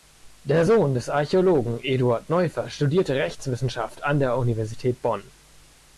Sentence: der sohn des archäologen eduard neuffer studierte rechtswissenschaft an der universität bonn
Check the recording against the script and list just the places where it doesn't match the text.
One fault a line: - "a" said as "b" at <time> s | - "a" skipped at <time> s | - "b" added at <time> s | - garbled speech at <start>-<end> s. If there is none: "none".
none